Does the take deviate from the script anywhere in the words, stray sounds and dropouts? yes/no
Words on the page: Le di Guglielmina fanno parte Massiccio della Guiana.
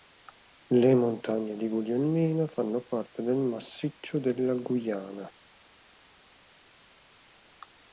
yes